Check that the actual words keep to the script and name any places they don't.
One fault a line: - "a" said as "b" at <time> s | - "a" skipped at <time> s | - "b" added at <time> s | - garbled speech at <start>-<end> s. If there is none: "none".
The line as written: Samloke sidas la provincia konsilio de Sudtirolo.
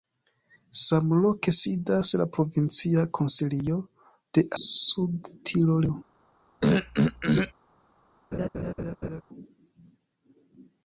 none